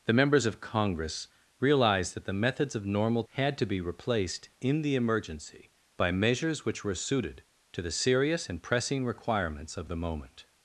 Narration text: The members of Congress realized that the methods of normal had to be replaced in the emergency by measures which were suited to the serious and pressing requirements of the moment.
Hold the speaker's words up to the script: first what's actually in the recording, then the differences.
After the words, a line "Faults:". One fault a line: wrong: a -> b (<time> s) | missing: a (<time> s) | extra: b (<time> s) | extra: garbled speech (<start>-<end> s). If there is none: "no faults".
The members of Congress realized that the methods of normal had to be replaced in the emergency by measures which were suited to the serious and pressing requirements of the moment.
Faults:
no faults